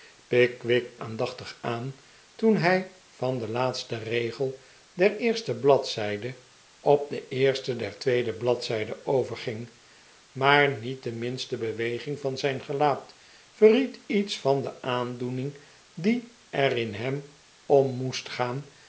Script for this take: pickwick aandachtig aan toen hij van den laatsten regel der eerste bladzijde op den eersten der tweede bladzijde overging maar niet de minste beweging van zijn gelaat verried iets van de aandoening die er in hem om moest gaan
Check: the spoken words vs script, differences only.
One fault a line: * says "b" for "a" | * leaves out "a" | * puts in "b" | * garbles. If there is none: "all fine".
all fine